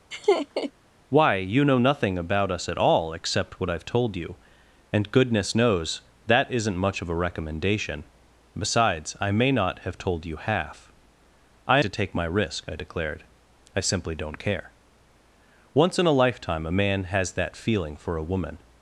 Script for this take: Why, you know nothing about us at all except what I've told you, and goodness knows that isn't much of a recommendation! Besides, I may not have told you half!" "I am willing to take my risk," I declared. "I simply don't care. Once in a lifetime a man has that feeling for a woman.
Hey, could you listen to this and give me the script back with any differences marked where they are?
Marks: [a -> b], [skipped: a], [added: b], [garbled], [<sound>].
[laugh] Why, you know nothing about us at all except what I've told you, and goodness knows that isn't much of a recommendation! Besides, I may not have told you half!" "I [skipped: am willing] to take my risk," I declared. "I simply don't care. Once in a lifetime a man has that feeling for a woman.